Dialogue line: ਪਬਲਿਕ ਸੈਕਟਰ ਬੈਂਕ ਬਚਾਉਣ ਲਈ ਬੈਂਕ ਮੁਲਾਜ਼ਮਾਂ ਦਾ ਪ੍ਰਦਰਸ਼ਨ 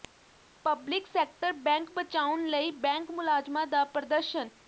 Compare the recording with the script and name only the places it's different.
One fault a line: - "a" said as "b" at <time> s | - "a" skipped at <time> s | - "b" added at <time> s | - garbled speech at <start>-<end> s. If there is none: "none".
none